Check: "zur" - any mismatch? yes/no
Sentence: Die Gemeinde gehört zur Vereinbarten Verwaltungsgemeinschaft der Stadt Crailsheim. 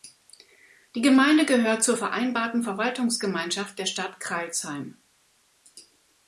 no